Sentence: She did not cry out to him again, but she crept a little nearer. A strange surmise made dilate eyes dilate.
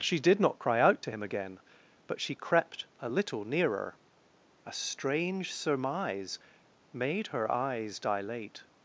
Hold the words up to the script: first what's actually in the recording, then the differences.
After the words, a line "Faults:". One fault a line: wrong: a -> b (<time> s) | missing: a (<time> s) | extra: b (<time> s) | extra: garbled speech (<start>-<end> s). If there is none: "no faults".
She did not cry out to him again, but she crept a little nearer. A strange surmise made her eyes dilate.
Faults:
wrong: dilate -> her (7.3 s)